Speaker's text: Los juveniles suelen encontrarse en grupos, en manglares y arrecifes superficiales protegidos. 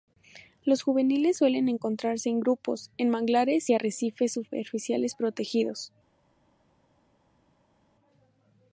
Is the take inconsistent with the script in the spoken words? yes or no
no